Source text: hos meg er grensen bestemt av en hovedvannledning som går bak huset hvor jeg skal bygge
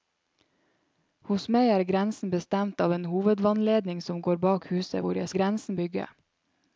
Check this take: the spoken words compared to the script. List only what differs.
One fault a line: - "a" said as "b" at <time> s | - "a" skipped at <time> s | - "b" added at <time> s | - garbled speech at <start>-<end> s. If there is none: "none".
- "skal" said as "grensen" at 5.4 s